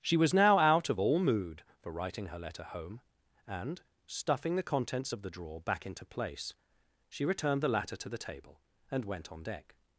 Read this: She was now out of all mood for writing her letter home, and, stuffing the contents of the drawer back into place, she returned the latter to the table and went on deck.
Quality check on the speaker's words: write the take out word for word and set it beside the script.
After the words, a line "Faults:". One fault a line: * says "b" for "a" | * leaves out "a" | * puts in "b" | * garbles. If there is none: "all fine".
She was now out of all mood for writing her letter home, and, stuffing the contents of the drawer back into place, she returned the latter to the table and went on deck.
Faults:
all fine